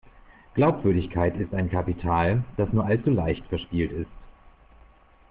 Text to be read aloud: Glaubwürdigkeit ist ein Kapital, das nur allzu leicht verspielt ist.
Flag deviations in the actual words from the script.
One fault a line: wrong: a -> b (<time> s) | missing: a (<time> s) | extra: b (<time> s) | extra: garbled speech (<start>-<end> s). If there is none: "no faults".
no faults